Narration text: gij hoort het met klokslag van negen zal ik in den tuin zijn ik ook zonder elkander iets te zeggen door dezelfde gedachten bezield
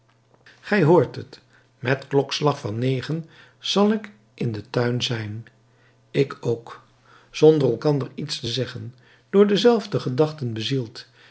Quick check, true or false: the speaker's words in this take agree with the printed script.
true